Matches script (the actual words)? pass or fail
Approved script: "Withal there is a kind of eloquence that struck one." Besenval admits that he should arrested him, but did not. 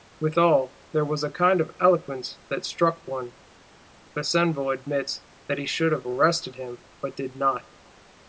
fail